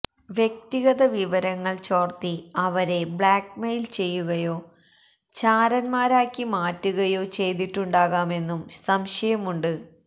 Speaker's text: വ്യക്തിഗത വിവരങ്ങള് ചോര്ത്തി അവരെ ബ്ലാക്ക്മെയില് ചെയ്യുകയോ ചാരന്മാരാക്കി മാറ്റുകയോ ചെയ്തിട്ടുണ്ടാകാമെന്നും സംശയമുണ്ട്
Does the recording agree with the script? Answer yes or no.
yes